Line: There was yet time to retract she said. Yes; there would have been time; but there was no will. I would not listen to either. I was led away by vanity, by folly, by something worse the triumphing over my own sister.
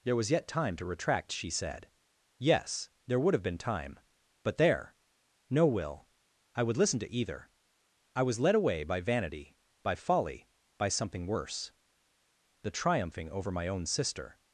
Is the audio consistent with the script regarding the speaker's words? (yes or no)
no